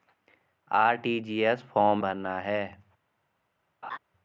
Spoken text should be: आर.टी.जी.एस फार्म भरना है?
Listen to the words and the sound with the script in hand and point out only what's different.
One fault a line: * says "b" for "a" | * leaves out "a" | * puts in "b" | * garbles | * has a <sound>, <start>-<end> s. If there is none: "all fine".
* has a laugh, 3.8-4.0 s